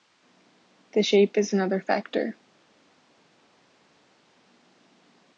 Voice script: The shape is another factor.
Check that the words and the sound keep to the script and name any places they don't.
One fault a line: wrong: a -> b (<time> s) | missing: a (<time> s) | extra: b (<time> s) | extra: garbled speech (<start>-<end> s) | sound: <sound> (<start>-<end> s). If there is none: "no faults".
no faults